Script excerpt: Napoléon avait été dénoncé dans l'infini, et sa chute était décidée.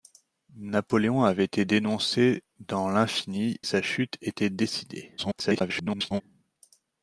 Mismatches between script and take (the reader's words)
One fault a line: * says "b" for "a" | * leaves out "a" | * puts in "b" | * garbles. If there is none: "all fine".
* leaves out "et"
* garbles